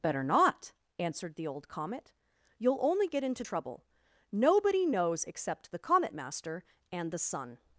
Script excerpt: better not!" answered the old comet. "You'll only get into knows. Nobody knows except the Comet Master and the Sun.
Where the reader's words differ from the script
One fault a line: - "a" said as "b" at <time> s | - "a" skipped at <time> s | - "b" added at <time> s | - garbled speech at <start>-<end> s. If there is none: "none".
- "knows" said as "trouble" at 3.4 s